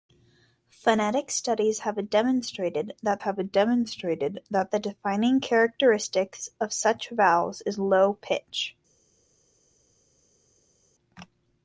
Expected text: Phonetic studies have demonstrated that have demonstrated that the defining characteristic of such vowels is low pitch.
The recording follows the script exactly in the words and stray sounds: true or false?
true